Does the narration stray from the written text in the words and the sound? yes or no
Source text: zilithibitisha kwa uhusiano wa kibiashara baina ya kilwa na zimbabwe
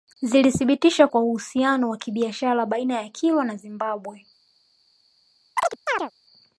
yes